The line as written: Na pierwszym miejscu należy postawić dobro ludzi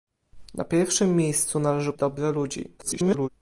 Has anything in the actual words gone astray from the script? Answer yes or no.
yes